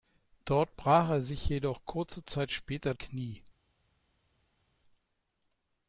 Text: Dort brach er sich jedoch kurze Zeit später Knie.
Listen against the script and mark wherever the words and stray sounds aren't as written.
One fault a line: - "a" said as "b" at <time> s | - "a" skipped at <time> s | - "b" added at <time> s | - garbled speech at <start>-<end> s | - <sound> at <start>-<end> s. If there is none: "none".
none